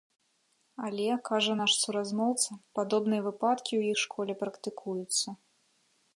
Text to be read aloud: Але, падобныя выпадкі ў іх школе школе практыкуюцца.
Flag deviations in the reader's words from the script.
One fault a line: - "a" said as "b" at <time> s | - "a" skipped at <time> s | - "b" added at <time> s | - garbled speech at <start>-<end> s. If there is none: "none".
- "кажа наш суразмоўца" added at 1.3 s
- "школе" skipped at 4.3 s